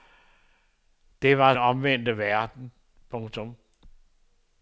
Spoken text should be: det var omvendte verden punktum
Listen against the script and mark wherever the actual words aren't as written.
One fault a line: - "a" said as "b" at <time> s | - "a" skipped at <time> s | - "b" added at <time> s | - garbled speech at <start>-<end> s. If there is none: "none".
none